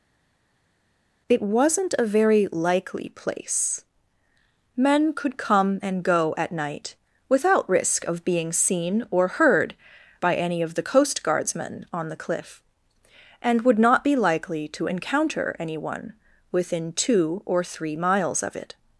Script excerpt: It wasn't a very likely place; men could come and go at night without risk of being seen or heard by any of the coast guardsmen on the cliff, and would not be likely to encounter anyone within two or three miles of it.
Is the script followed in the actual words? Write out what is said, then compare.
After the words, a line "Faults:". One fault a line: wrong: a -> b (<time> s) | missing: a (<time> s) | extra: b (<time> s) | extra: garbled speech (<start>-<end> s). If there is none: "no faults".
It wasn't a very likely place; men could come and go at night without risk of being seen or heard by any of the coast guardsmen on the cliff, and would not be likely to encounter anyone within two or three miles of it.
Faults:
no faults